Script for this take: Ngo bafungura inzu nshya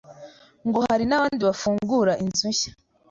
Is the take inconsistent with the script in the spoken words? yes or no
yes